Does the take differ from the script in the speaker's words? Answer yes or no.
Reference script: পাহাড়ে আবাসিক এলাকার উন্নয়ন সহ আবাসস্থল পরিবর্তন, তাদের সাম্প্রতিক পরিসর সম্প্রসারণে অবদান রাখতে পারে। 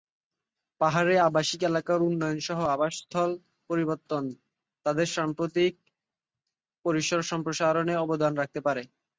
no